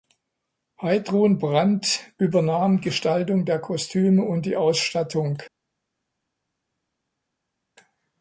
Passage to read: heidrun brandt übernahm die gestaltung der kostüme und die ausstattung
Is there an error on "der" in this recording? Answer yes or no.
no